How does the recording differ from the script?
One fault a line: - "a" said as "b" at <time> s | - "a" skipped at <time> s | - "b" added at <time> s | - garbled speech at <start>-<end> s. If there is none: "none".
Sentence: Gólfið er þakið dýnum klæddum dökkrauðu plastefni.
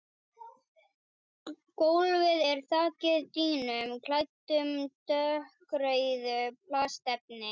none